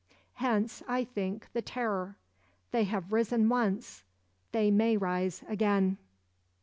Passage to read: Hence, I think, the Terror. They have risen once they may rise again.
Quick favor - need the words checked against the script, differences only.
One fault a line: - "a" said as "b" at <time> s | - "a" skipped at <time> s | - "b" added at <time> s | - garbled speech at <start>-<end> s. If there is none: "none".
none